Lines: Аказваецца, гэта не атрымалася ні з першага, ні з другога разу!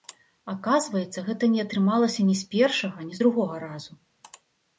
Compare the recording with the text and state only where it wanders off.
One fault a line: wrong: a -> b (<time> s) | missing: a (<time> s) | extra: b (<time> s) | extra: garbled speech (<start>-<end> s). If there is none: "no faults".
no faults